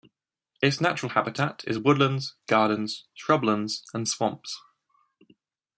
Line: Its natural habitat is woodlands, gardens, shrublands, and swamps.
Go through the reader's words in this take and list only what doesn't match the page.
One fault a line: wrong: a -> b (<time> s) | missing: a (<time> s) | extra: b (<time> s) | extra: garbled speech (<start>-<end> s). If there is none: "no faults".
no faults